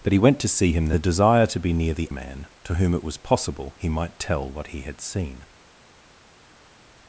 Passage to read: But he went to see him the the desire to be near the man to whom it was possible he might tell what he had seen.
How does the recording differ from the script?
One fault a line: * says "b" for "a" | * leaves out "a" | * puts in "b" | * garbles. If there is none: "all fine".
all fine